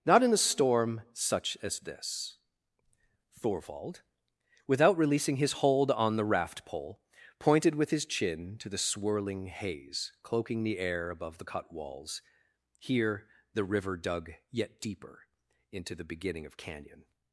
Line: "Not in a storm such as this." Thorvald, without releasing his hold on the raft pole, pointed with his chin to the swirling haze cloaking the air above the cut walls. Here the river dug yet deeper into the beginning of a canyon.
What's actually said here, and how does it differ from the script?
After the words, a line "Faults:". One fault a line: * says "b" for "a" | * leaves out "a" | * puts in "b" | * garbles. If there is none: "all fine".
"Not in a storm such as this." Thorvald, without releasing his hold on the raft pole, pointed with his chin to the swirling haze cloaking the air above the cut walls. Here the river dug yet deeper into the beginning of canyon.
Faults:
* leaves out "a"